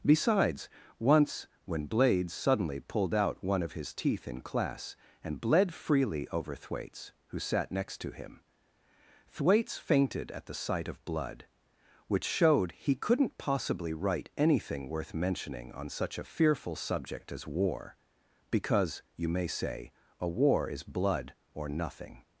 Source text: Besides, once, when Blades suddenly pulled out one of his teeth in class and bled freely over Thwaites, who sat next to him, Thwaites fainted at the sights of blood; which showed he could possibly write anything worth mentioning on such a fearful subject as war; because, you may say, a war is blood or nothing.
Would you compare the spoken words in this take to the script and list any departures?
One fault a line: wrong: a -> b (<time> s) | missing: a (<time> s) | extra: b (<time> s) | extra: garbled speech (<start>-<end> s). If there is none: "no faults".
wrong: sights -> sight (10.6 s)
wrong: could -> couldn't (12.9 s)